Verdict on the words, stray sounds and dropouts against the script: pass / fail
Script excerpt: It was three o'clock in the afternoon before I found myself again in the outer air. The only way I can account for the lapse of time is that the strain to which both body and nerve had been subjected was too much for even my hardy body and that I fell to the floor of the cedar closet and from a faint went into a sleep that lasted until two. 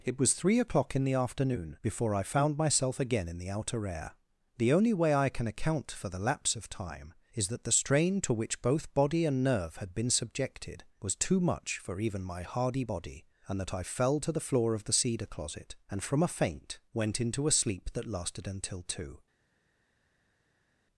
pass